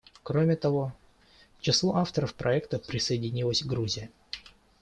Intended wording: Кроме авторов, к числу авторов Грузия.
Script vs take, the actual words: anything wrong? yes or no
yes